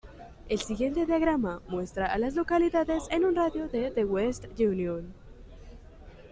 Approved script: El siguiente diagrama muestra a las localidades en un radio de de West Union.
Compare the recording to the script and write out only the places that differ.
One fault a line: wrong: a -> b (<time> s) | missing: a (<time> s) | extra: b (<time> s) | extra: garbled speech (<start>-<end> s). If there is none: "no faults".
no faults